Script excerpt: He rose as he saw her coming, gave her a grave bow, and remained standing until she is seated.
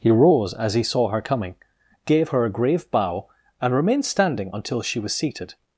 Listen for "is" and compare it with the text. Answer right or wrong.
wrong